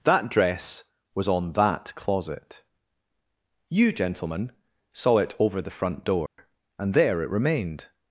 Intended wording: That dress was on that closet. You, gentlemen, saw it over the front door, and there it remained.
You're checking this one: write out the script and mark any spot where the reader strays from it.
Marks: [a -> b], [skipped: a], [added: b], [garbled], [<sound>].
That dress was on that closet. You, gentlemen, saw it over the front door, [dropout] and there it remained.